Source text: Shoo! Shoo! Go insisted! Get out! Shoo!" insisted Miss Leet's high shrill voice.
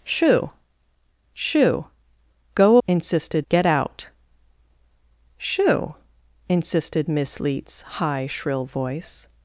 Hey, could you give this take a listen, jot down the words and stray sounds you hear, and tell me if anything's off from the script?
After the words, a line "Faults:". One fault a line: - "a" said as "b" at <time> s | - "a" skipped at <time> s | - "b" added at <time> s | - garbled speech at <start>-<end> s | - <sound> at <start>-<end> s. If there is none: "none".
Shoo! Shoo! Go insisted! Get out! Shoo!" insisted Miss Leet's high shrill voice.
Faults:
none